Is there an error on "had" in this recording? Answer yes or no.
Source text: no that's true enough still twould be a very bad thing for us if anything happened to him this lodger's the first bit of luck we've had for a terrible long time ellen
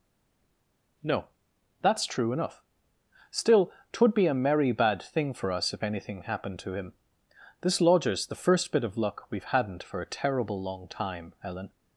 yes